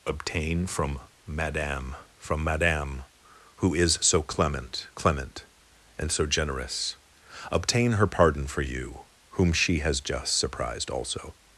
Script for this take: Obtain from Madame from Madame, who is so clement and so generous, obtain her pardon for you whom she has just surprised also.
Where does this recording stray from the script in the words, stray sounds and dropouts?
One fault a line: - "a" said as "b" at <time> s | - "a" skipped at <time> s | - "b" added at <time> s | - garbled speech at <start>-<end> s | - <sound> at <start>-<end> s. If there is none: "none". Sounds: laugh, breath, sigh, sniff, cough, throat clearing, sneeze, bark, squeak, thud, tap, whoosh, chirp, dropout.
- "clement" added at 4.9 s